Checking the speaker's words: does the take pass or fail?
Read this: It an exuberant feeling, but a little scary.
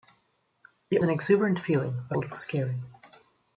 pass